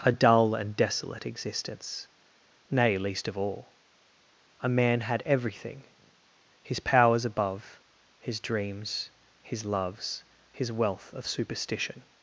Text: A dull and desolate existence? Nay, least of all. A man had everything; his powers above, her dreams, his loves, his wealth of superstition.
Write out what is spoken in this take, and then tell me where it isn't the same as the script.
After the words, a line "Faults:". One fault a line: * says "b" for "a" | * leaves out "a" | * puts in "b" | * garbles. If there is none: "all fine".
A dull and desolate existence? Nay, least of all. A man had everything; his powers above, his dreams, his loves, his wealth of superstition.
Faults:
* says "his" for "her"